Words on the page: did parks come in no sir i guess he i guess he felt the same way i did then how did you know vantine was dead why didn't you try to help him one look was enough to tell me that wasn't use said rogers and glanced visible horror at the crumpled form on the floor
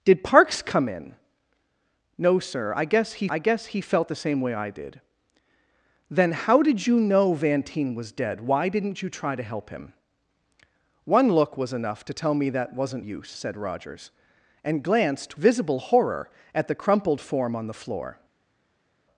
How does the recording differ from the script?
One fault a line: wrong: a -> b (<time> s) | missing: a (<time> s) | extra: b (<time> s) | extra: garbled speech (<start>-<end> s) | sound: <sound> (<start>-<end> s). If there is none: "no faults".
no faults